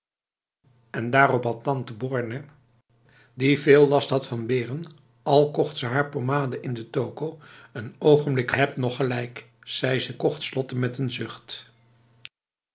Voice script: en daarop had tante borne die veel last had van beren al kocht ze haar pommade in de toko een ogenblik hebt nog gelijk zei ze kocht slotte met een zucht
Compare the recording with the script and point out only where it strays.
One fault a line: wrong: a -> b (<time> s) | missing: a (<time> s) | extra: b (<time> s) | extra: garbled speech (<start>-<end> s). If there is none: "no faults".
no faults